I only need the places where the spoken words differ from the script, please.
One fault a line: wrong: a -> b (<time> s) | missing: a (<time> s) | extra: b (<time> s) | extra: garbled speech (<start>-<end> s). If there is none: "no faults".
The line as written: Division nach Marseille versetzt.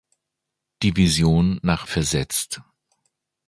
missing: Marseille (1.9 s)